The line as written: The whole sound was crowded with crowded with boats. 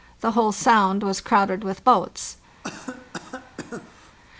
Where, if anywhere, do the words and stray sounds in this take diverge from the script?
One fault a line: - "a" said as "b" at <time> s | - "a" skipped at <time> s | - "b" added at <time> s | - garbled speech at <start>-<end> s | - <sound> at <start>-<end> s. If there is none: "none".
- "crowded with" skipped at 1.9 s
- cough at 2.6-4.2 s